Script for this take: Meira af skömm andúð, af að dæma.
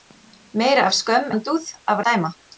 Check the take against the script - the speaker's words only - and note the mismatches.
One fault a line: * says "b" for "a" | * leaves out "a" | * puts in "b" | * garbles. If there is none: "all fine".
all fine